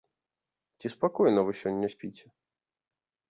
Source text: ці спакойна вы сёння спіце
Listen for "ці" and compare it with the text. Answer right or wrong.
right